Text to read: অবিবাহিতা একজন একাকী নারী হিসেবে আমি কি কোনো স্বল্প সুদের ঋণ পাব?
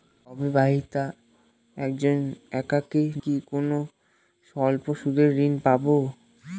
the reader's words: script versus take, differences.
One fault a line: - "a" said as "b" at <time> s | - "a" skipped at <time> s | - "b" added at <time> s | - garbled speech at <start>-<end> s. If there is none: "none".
- "নারী হিসেবে আমি" skipped at 3.0 s